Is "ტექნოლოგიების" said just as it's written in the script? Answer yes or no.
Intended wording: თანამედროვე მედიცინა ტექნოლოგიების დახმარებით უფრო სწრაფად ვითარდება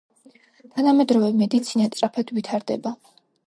no